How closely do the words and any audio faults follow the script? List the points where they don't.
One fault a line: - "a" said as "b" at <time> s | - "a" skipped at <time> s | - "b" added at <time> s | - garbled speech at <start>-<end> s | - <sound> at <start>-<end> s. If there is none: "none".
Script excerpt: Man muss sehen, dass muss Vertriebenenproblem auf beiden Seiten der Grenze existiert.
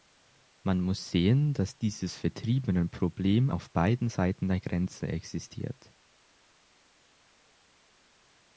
- "muss" said as "dieses" at 1.8 s